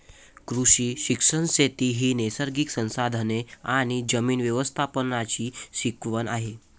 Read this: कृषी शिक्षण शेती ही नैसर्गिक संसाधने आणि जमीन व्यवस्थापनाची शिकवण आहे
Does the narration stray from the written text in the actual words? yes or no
no